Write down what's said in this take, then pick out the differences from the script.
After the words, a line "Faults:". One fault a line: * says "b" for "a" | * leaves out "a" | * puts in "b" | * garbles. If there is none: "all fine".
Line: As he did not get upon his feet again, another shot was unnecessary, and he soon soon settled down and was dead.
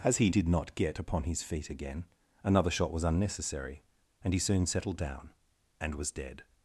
As he did not get upon his feet again, another shot was unnecessary, and he soon settled down and was dead.
Faults:
* leaves out "soon"